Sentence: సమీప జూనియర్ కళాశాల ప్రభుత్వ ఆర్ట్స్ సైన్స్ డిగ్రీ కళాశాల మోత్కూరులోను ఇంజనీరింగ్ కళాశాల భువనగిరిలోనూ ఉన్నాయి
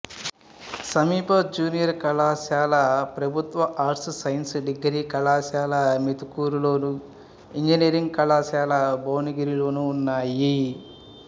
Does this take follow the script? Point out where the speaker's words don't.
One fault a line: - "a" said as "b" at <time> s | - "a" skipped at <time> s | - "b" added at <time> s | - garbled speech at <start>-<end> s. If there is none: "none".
none